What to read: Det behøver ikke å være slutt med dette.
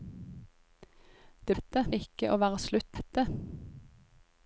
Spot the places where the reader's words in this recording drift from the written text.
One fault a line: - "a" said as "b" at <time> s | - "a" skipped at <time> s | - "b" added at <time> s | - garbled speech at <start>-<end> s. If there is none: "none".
- "behøver" said as "dette" at 1.5 s
- "med" skipped at 3.0 s